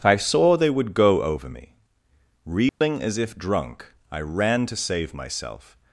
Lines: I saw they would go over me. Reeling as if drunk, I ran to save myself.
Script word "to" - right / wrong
right